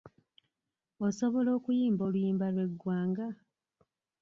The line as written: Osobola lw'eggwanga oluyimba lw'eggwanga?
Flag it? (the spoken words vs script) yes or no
yes